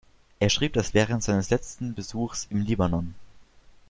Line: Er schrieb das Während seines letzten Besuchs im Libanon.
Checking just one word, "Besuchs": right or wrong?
right